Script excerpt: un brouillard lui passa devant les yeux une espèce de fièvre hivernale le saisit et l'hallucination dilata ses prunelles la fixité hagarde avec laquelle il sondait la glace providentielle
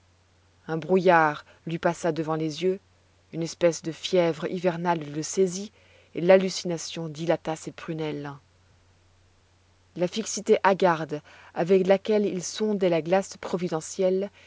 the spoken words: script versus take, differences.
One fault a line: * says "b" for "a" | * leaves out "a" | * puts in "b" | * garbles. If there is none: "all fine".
all fine